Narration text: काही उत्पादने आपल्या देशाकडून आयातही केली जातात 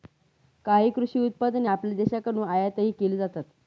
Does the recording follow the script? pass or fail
fail